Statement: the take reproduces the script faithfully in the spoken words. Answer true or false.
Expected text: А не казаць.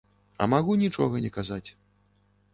false